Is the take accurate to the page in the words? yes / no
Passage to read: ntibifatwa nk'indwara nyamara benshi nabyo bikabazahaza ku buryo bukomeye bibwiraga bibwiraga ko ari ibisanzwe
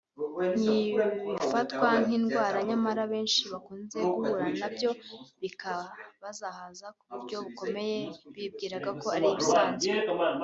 no